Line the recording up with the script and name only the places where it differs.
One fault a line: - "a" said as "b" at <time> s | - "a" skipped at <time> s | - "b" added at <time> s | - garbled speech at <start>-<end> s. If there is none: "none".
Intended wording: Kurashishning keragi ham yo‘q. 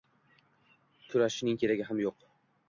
none